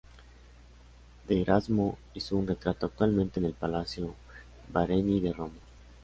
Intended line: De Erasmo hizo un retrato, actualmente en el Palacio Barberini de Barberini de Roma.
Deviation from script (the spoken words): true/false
true